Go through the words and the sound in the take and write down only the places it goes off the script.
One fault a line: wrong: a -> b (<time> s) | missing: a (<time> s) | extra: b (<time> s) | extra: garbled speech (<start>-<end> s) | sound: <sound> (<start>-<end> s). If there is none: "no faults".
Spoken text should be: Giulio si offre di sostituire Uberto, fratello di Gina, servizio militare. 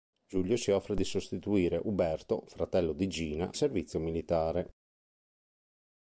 no faults